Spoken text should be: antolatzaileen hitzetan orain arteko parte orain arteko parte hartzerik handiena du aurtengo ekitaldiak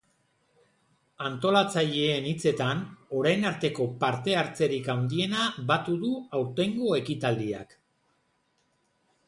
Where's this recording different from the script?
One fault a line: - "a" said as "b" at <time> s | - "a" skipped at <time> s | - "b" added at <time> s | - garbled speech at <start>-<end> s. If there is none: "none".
- "orain arteko parte" skipped at 4.3 s
- "batu" added at 5.7 s